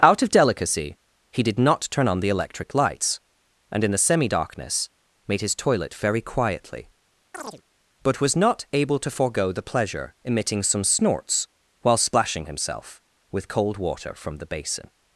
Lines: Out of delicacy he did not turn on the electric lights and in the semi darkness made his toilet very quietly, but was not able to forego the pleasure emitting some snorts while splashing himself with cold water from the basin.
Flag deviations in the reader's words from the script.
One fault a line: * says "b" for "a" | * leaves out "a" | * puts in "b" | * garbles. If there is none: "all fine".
all fine